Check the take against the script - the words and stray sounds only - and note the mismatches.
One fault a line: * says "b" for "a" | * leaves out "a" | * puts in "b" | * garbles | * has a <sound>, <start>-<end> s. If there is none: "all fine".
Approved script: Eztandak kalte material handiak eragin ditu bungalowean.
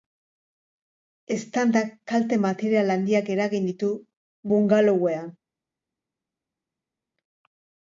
all fine